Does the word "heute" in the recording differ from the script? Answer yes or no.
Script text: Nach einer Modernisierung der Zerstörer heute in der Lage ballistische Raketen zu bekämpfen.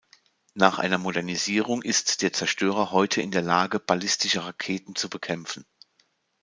no